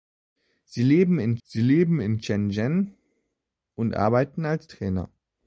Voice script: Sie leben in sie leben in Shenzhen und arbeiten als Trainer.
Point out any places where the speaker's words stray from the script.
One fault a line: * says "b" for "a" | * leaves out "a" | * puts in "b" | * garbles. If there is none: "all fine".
all fine